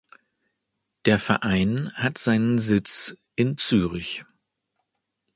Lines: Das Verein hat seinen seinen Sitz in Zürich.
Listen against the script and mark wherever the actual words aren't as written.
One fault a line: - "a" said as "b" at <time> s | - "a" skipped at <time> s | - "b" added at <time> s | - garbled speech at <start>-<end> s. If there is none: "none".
- "Das" said as "Der" at 1.1 s
- "seinen" skipped at 2.6 s